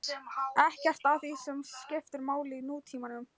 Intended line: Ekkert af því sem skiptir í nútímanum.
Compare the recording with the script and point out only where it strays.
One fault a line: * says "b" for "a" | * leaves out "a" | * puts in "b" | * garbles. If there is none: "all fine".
* puts in "máli"